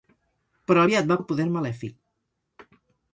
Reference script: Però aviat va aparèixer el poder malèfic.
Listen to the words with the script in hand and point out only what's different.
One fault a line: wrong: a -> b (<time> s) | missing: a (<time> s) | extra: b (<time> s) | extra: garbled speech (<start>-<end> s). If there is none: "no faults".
missing: aparèixer (1.2 s)